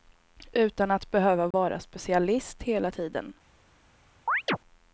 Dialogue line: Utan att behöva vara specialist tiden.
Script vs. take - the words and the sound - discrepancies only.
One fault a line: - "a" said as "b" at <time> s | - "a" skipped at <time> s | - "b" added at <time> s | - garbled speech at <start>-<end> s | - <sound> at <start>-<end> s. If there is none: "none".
- dropout at 1.5-1.5 s
- "hela" added at 2.6 s
- chirp at 4.3-4.6 s